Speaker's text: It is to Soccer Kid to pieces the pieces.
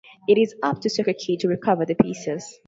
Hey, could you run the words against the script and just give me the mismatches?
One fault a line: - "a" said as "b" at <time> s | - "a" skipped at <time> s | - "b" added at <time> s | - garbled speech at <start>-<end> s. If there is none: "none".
- "up" added at 0.6 s
- "pieces" said as "recover" at 1.5 s